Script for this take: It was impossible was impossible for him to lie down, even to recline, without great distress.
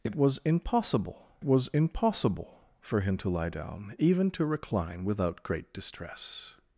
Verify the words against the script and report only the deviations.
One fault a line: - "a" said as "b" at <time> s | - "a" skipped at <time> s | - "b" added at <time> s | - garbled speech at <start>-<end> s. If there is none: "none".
none